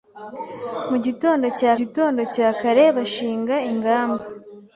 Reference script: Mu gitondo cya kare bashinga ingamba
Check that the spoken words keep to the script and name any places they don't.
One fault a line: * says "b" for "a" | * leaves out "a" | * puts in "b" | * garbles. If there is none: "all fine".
* puts in "gitondo cya"